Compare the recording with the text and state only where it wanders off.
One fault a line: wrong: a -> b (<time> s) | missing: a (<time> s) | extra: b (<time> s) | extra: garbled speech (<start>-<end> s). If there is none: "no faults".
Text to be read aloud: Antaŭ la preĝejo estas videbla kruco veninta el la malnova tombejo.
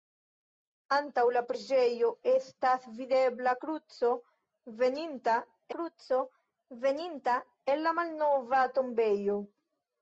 extra: kruco veninta (5.8 s)